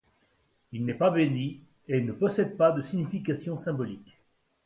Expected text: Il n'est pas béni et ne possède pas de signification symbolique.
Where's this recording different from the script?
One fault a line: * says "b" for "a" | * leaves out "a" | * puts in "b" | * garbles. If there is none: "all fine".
all fine